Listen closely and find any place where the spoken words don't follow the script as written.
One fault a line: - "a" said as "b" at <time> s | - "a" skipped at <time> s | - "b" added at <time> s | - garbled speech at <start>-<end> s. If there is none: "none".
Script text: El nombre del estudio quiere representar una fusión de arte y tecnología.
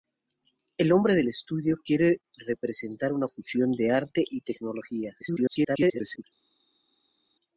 - garbled speech at 5.2-6.2 s